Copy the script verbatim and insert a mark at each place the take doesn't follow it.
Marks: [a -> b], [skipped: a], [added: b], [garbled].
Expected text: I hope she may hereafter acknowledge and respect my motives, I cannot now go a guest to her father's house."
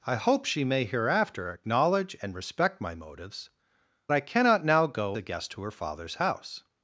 I hope she may hereafter acknowledge and respect my motives, I cannot now go a guest to her father's house."